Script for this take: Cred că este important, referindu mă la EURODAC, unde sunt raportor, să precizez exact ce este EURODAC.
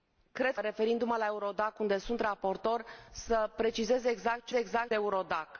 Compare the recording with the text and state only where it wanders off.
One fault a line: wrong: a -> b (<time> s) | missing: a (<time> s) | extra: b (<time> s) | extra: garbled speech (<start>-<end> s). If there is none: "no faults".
missing: că este important (0.6 s)
wrong: este -> exact (4.5 s)